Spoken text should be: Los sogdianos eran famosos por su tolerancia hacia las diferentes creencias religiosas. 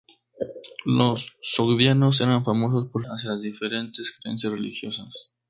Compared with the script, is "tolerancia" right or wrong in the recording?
wrong